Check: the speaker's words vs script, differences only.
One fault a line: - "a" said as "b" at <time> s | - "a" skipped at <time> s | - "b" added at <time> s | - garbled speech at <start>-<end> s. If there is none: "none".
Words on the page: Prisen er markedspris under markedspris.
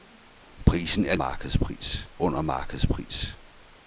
none